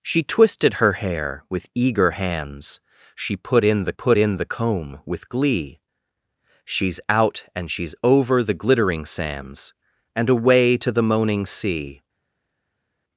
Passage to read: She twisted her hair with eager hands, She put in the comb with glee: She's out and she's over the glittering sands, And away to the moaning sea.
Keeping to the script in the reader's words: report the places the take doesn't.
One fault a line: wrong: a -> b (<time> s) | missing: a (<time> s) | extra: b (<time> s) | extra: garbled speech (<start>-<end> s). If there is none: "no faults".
extra: put in the (3.9 s)